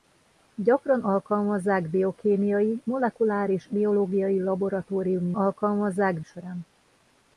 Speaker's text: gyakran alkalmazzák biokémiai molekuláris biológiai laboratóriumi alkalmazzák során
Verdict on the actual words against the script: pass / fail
pass